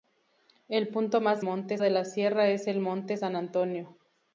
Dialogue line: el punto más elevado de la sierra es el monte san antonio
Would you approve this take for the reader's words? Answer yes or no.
no